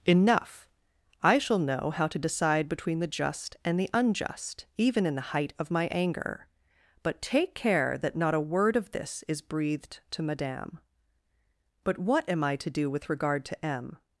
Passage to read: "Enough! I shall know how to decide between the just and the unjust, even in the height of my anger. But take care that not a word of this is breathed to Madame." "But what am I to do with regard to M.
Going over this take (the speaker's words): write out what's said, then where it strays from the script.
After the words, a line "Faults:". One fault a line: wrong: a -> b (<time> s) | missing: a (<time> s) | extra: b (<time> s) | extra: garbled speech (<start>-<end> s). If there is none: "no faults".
"Enough! I shall know how to decide between the just and the unjust, even in the height of my anger. But take care that not a word of this is breathed to Madame." "But what am I to do with regard to M.
Faults:
no faults